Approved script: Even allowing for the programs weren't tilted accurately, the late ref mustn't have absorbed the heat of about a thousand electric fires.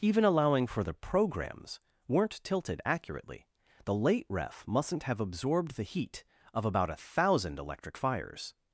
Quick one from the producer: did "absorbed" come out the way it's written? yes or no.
yes